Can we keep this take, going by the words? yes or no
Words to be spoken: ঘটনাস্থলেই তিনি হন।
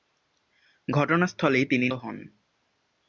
yes